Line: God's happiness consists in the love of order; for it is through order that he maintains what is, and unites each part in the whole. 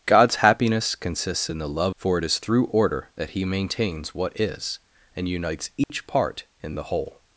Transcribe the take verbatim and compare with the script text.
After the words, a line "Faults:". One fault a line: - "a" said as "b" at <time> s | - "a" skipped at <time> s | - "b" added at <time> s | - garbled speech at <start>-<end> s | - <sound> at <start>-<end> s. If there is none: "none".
God's happiness consists in the love; for it is through order that he maintains what is, and unites each part in the whole.
Faults:
- "of order" skipped at 1.9 s
- dropout at 5.8-5.9 s